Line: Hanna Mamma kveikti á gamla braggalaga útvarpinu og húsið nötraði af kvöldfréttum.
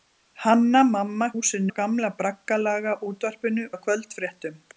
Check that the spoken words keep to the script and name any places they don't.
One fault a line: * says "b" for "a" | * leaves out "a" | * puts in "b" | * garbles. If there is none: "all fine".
* says "húsið" for "kveikti"
* leaves out "og húsið nötraði"